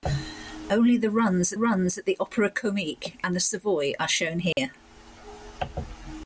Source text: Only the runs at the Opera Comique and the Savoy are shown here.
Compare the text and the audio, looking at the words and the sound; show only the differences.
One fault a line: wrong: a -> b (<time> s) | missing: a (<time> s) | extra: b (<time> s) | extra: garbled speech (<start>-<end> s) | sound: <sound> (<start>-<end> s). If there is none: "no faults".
extra: runs (1.6 s)
sound: dropout (4.5-4.6 s)